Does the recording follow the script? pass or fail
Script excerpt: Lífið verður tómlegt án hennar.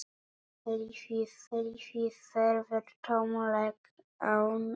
fail